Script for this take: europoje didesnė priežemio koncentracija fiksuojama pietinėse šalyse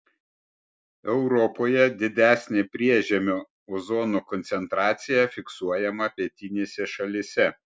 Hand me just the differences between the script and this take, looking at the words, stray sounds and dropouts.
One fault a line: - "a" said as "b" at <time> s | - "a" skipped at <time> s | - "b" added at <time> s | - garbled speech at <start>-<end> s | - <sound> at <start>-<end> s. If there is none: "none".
- "ozono" added at 3.8 s